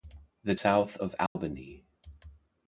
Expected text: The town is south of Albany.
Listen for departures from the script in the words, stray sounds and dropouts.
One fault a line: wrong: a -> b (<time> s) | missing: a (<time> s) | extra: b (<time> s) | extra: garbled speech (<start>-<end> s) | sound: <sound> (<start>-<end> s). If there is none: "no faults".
missing: town is (0.6 s)
sound: dropout (1.3-1.4 s)